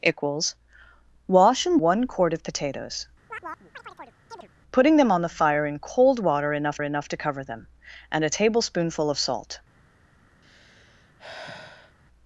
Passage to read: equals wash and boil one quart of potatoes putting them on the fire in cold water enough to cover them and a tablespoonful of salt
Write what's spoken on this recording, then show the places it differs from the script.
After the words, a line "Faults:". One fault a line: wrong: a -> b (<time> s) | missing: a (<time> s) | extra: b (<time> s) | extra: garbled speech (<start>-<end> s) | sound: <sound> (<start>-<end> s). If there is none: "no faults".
equals wash and one quart of potatoes putting them on the fire in cold water enough enough to cover them and a tablespoonful of salt
Faults:
missing: boil (1.8 s)
sound: chirp (3.3-4.5 s)
extra: enough (6.8 s)
sound: sigh (10.4-12.0 s)